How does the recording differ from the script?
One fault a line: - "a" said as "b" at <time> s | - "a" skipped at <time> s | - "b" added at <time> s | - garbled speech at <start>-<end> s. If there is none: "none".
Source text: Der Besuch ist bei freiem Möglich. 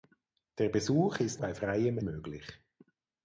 none